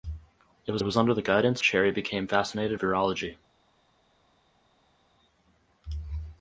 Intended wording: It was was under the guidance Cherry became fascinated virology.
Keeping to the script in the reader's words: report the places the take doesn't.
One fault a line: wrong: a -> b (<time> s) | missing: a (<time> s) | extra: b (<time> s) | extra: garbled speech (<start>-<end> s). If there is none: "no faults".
no faults